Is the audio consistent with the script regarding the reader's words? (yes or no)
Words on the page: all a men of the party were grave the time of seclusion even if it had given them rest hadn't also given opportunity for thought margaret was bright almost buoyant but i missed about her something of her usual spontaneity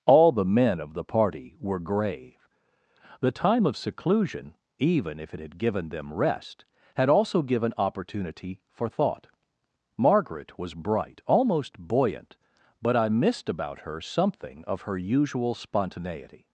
no